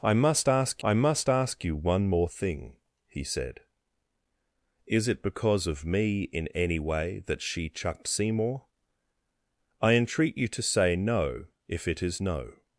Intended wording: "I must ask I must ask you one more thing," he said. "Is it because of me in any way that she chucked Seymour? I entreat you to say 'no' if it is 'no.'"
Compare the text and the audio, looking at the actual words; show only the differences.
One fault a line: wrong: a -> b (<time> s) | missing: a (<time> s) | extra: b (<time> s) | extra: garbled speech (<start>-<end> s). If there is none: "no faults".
no faults